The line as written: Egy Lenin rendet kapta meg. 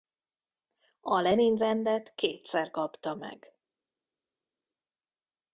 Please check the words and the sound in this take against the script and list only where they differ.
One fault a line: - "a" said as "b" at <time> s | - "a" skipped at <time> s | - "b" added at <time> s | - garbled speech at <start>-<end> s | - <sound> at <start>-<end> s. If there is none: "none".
- "Egy" said as "A" at 1.0 s
- "kétszer" added at 2.1 s